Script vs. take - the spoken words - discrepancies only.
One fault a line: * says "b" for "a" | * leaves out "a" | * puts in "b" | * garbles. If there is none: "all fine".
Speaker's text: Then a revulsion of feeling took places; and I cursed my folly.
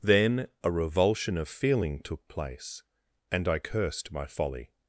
* says "place" for "places"